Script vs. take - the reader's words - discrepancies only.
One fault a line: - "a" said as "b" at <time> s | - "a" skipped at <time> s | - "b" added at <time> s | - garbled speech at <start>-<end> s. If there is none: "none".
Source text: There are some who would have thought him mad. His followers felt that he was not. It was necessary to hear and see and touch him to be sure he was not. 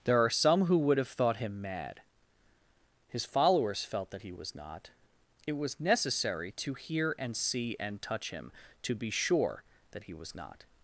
- "that" added at 9.9 s